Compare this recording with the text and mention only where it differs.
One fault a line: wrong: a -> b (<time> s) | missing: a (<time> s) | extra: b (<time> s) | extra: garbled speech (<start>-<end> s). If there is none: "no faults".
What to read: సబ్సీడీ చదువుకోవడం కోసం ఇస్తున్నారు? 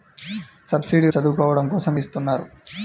no faults